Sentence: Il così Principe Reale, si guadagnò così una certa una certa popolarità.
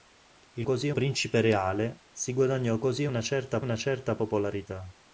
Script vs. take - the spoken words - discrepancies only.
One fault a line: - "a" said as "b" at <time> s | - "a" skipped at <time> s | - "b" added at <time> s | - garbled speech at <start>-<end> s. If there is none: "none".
none